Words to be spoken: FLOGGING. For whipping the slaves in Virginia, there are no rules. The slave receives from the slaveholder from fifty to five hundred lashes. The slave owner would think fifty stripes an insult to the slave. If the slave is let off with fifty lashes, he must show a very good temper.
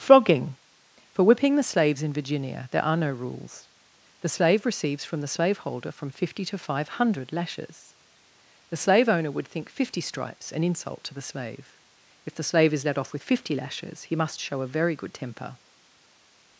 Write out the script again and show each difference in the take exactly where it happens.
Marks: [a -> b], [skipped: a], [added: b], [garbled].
FLOGGING. For whipping the slaves in Virginia, there are no rules. The slave receives from the slaveholder from fifty to five hundred lashes. The slave owner would think fifty stripes an insult to the slave. If the slave is let off with fifty lashes, he must show a very good temper.